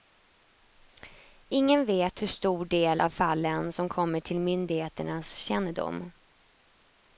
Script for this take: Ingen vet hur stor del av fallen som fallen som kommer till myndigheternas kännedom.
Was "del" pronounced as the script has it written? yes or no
yes